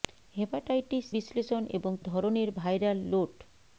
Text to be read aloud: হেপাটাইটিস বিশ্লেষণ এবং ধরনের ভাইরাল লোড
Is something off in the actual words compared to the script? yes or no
no